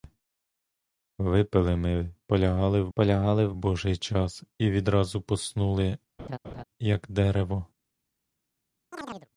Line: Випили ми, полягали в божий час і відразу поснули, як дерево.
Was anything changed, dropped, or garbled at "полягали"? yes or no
no